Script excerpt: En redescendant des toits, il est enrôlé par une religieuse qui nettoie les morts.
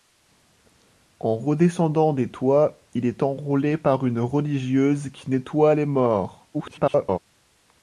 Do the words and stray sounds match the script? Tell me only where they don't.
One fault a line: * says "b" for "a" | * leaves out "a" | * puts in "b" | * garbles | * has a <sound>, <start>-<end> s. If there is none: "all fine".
* garbles